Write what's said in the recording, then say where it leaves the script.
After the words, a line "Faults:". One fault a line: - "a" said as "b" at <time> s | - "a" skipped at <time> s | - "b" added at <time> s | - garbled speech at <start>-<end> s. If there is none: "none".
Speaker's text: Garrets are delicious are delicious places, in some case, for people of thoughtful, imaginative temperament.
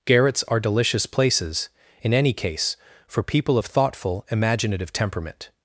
Garrets are delicious places, in any case, for people of thoughtful, imaginative temperament.
Faults:
- "are delicious" skipped at 1.1 s
- "some" said as "any" at 2.1 s